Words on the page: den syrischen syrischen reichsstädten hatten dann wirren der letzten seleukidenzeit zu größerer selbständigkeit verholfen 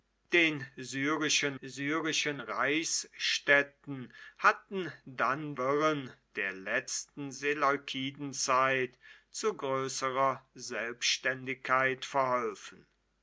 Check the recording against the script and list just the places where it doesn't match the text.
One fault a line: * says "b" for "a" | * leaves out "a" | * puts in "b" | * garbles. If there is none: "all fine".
all fine